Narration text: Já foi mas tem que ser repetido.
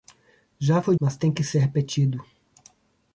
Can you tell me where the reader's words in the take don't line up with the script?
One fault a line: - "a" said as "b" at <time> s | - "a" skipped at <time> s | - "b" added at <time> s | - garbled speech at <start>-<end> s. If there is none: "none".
none